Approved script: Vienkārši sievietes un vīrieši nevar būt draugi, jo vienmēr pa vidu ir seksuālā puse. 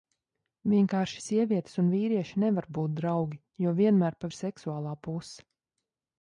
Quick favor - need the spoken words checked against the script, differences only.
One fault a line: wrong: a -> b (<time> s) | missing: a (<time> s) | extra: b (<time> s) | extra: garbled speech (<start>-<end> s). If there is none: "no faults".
missing: vidu (4.3 s)